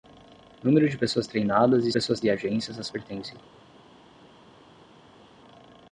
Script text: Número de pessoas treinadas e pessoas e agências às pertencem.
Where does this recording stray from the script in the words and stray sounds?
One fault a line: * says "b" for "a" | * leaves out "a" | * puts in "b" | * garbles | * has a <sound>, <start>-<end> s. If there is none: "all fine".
all fine